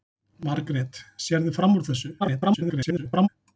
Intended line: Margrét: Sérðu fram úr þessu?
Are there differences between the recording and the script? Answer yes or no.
yes